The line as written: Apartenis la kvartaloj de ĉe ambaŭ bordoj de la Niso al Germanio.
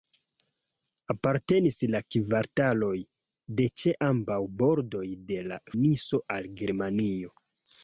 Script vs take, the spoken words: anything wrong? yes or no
no